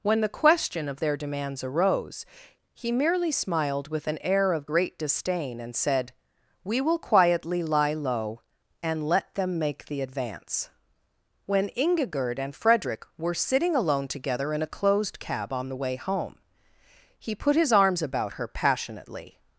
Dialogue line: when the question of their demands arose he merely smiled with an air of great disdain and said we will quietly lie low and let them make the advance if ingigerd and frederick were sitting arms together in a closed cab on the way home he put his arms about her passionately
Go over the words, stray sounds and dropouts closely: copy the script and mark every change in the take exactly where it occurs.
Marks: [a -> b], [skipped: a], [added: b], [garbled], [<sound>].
when the question of their demands arose he merely smiled with an air of great disdain and said we will quietly lie low and let them make the advance [if -> when] ingigerd and frederick were sitting [arms -> alone] together in a closed cab on the way home he put his arms about her passionately